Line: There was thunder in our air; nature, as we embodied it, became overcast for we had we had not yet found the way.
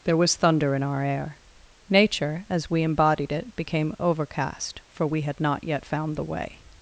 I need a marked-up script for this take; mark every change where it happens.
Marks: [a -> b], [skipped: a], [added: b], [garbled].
There was thunder in our air; nature, as we embodied it, became overcast for we had [skipped: we had] not yet found the way.